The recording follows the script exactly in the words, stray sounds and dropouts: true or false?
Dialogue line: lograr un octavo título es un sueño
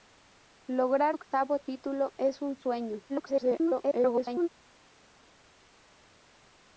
false